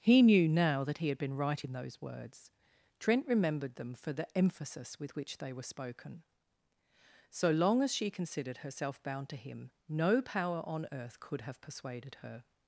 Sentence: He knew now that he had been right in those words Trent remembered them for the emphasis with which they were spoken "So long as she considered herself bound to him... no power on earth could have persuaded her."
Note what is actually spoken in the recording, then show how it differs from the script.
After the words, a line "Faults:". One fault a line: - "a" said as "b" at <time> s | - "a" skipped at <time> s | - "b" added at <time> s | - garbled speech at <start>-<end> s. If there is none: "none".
He knew now that he had been right in those words Trent remembered them for the emphasis with which they were spoken "So long as she considered herself bound to him... no power on earth could have persuaded her."
Faults:
none